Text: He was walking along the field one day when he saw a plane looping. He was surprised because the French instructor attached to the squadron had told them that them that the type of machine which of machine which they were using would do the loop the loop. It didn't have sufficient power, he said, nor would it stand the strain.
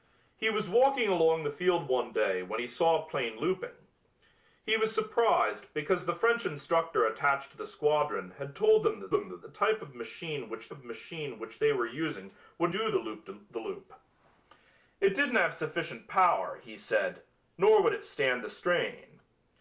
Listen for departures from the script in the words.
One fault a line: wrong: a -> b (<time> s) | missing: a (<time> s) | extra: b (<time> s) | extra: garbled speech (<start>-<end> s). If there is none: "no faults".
no faults